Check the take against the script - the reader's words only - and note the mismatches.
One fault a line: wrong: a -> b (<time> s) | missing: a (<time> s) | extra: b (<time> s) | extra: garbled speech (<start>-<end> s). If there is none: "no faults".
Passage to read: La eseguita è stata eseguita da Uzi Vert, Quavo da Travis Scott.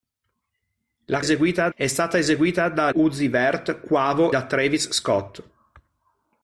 no faults